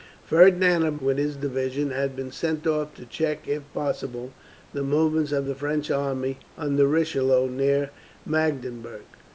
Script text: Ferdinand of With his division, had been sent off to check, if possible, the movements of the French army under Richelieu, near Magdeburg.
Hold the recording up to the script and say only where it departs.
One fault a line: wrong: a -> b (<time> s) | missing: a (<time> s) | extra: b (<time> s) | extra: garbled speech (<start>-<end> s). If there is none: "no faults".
no faults